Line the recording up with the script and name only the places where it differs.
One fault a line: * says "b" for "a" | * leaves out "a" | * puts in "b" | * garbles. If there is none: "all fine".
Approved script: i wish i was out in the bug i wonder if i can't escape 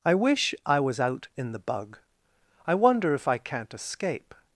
all fine